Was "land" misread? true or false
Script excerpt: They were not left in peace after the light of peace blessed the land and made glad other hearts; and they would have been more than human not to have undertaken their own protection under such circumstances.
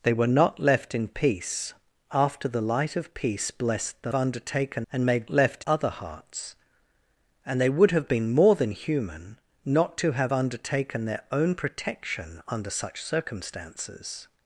true